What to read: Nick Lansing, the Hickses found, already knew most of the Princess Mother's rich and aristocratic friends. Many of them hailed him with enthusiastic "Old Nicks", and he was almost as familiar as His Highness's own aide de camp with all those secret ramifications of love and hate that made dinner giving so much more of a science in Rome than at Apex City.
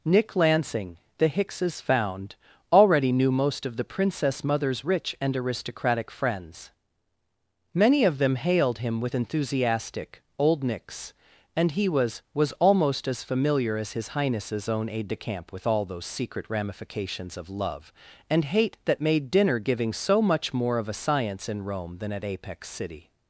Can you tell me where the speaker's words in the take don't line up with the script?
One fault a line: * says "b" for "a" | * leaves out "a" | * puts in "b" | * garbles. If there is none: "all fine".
* puts in "was"